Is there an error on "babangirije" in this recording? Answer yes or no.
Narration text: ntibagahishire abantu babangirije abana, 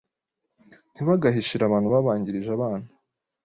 no